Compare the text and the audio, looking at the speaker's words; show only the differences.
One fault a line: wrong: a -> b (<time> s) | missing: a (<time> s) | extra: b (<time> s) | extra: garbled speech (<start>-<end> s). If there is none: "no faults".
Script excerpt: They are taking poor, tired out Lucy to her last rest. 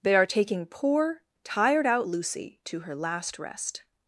no faults